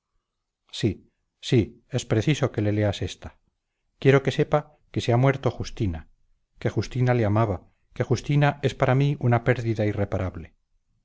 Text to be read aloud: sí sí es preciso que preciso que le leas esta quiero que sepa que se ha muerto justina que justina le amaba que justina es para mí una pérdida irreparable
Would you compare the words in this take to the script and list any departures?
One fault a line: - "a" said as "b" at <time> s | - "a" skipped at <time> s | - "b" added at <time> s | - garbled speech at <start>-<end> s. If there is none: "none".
- "preciso que" skipped at 2.6 s